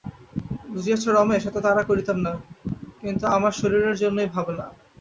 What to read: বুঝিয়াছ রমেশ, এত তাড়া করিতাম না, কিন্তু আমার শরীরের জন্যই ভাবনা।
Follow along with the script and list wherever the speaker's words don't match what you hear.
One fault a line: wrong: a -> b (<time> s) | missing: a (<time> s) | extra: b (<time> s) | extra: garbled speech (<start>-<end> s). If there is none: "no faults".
no faults